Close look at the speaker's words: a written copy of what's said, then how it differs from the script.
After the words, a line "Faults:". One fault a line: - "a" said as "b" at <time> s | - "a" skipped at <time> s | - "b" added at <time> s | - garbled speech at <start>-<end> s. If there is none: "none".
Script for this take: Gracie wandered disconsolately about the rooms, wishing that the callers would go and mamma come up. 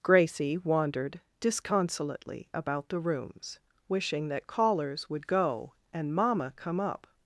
Gracie wandered disconsolately about the rooms, wishing that callers would go and mamma come up.
Faults:
- "the" skipped at 4.5 s